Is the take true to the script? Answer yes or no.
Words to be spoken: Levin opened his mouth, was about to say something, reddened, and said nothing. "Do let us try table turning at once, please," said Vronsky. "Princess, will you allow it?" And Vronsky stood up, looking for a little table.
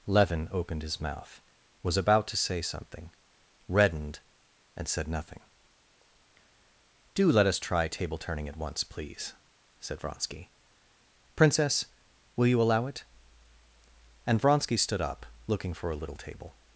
yes